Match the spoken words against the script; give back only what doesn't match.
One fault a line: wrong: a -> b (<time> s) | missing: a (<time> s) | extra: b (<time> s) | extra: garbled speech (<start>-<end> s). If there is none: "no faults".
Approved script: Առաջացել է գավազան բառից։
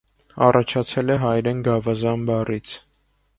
extra: հայերեն (1.2 s)